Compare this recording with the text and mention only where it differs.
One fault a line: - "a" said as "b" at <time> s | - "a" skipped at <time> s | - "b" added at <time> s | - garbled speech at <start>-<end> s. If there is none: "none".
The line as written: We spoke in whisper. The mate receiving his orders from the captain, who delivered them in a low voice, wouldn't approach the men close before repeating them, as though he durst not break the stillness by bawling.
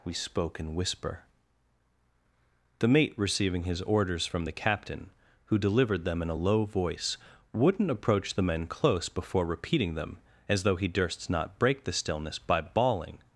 none